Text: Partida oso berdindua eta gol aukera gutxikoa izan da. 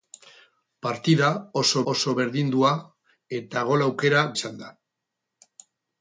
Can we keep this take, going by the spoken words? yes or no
no